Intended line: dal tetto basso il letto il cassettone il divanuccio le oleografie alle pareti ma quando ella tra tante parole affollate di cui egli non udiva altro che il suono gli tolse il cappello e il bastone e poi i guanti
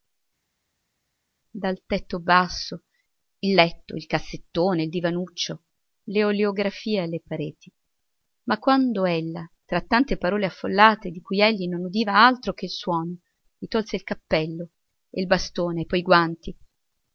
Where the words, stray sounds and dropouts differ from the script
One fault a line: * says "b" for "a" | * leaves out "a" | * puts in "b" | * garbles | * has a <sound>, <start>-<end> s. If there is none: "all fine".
all fine